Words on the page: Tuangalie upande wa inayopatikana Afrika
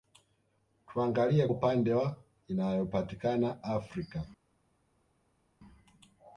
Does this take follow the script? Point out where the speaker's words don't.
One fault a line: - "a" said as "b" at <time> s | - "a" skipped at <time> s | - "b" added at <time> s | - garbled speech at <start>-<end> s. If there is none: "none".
none